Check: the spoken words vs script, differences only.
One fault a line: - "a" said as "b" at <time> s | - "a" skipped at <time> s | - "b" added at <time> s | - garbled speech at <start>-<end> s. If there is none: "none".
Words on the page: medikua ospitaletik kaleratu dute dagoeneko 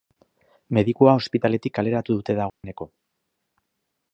none